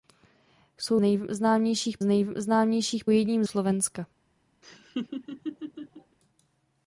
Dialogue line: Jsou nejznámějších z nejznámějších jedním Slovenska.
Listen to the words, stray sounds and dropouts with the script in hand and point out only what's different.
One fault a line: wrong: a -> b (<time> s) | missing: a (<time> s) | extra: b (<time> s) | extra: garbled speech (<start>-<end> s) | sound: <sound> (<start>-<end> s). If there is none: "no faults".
sound: laugh (4.6-6.2 s)